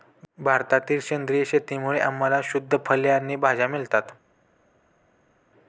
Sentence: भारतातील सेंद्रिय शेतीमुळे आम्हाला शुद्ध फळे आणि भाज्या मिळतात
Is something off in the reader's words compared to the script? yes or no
no